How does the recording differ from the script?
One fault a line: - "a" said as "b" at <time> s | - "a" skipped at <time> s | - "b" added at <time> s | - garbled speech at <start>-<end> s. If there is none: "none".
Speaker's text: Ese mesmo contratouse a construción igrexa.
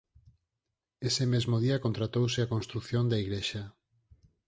- "día" added at 1.6 s
- "da" added at 3.1 s